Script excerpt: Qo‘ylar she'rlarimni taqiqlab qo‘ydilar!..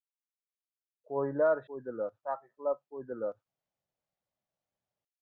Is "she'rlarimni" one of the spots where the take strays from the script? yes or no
yes